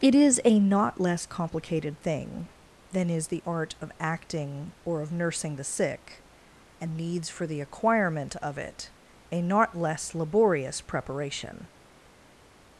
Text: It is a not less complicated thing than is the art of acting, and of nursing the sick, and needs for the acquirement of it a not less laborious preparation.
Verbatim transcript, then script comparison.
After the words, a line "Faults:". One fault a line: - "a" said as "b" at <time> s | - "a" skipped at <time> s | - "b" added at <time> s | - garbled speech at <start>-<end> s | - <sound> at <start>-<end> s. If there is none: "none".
It is a not less complicated thing than is the art of acting, or of nursing the sick, and needs for the acquirement of it a not less laborious preparation.
Faults:
- "and" said as "or" at 4.9 s